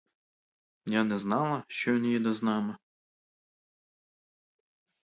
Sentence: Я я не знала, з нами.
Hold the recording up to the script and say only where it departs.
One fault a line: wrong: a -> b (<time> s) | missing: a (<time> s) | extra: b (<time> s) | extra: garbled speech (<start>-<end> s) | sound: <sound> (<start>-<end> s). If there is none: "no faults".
missing: я (1.0 s)
extra: що він їде (1.7 s)